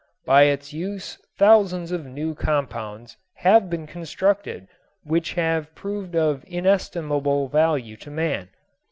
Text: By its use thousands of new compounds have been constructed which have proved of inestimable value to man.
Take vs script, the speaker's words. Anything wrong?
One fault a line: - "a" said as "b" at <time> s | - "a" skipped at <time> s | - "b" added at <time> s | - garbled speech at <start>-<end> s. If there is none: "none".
none